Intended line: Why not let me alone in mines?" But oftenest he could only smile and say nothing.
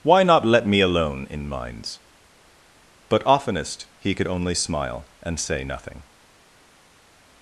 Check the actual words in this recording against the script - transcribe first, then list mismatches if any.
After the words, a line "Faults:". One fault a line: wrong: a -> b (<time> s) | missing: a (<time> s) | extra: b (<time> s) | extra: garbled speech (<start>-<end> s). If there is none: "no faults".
Why not let me alone in mines?" But oftenest he could only smile and say nothing.
Faults:
no faults